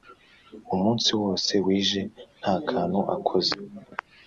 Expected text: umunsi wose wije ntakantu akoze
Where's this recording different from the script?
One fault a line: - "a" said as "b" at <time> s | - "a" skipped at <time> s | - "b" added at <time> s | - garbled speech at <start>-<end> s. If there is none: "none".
none